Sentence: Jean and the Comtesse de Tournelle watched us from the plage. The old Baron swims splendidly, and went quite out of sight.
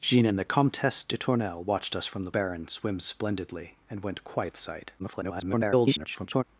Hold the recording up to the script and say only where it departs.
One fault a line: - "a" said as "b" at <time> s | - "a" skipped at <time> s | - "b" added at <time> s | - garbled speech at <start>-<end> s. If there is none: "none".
- "plage The old" skipped at 2.3 s
- "out" skipped at 4.5 s
- garbled speech at 5.0-6.4 s